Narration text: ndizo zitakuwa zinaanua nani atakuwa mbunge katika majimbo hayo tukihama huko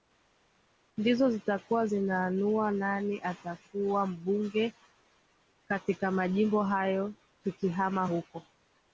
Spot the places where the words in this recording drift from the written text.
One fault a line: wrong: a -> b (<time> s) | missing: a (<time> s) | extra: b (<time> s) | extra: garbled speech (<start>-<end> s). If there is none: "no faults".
no faults